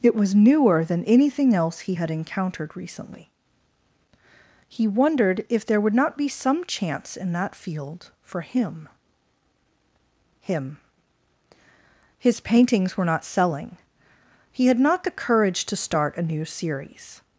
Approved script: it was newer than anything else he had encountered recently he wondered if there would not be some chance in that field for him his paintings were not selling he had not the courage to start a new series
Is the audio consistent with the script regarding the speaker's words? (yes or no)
no